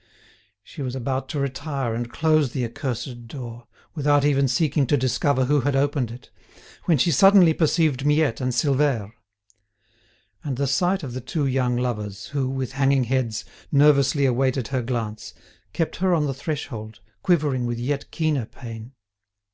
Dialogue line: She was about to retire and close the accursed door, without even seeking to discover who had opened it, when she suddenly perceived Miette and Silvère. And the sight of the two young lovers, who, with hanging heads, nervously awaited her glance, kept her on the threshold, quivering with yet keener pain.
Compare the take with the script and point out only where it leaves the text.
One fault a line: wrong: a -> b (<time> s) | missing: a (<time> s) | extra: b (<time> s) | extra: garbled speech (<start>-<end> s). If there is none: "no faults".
no faults